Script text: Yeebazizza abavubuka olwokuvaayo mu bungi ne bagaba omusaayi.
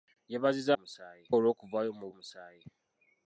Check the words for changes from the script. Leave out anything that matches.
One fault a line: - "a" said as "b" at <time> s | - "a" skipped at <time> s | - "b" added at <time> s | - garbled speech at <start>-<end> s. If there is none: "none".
- "abavubuka" said as "omusaayi" at 0.7 s
- "bungi ne bagaba" skipped at 2.1 s